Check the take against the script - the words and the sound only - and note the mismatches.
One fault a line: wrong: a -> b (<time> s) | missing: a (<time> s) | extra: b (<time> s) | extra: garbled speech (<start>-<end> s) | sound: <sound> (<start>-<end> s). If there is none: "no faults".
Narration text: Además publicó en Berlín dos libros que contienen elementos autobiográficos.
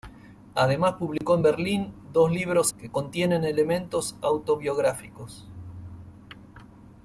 sound: dropout (1.2-1.2 s)